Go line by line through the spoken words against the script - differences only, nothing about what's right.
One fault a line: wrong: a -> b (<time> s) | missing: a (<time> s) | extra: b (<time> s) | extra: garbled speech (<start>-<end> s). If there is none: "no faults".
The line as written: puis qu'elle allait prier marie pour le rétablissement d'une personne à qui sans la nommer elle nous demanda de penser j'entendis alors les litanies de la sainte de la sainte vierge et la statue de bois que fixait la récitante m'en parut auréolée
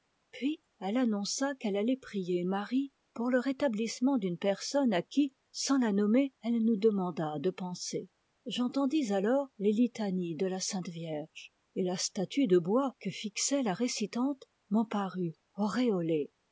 extra: elle annonça (0.8 s)
missing: de la sainte (10.9 s)